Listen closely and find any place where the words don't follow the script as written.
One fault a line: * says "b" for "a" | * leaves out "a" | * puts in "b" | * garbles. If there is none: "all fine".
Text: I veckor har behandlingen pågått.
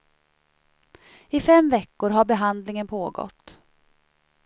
* puts in "fem"